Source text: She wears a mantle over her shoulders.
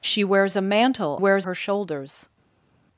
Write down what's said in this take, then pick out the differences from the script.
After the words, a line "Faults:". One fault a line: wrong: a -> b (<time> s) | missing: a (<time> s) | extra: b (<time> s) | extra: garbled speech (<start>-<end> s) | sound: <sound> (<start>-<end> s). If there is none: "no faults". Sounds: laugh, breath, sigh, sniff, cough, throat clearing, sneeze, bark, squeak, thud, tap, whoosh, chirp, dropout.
She wears a mantle wears her shoulders.
Faults:
wrong: over -> wears (1.2 s)